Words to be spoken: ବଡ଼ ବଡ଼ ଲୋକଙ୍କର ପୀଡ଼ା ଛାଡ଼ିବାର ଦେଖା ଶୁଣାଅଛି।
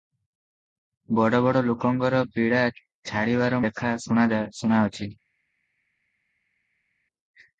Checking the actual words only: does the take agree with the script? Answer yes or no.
yes